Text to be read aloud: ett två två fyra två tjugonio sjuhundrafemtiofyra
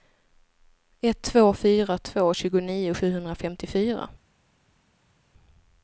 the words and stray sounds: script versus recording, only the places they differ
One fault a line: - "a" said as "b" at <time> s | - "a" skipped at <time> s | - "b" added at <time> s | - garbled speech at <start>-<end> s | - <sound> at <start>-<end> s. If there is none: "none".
- "två" skipped at 1.5 s